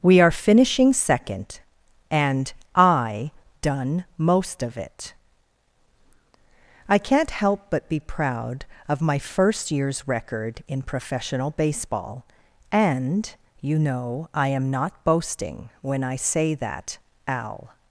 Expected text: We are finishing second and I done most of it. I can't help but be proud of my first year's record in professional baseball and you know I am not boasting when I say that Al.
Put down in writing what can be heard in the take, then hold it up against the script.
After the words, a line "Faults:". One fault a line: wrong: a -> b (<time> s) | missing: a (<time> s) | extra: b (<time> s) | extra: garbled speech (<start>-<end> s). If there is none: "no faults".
We are finishing second and I done most of it. I can't help but be proud of my first year's record in professional baseball and you know I am not boasting when I say that Al.
Faults:
no faults